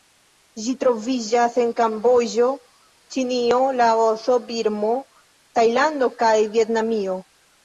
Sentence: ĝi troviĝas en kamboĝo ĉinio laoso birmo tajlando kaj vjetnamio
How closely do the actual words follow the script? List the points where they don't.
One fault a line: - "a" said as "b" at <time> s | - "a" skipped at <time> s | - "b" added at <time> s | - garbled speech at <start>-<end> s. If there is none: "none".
none